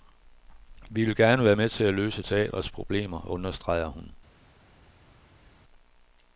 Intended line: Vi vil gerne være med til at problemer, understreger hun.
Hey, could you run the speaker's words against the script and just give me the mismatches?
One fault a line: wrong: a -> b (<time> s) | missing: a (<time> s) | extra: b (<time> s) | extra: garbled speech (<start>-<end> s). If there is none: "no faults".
extra: løse teatrets (1.9 s)